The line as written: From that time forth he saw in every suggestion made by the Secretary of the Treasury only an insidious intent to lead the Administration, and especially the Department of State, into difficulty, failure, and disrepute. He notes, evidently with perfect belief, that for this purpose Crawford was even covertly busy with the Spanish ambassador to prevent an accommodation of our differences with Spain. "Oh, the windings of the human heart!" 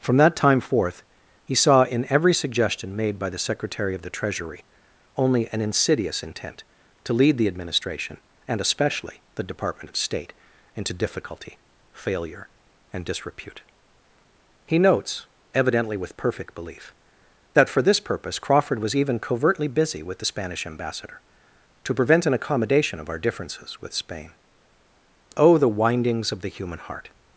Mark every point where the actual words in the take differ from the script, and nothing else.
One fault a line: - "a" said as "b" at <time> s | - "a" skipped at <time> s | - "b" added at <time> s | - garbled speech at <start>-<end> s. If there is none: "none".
none